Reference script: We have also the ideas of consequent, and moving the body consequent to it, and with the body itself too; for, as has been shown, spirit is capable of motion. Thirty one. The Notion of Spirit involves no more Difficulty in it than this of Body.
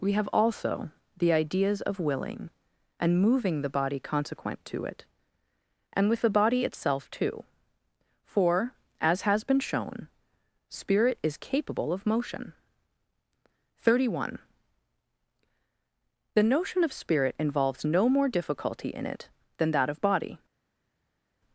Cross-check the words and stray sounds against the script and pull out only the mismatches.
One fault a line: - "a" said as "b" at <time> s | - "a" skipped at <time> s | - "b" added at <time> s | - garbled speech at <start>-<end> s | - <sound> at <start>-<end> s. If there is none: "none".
- "consequent" said as "willing" at 2.0 s
- "this" said as "that" at 19.7 s